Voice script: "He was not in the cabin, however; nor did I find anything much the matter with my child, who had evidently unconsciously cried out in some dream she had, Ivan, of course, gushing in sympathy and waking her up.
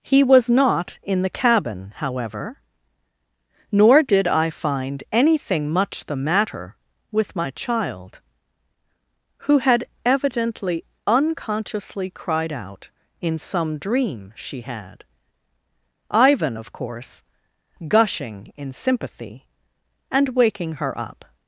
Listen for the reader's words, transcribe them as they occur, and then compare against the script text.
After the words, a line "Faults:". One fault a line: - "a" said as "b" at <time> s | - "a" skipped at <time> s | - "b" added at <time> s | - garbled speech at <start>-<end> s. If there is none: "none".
"He was not in the cabin, however; nor did I find anything much the matter with my child, who had evidently unconsciously cried out in some dream she had, Ivan, of course, gushing in sympathy and waking her up.
Faults:
none